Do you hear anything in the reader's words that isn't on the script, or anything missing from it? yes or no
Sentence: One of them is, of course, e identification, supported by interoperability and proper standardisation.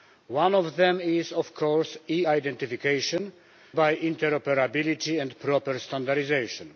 yes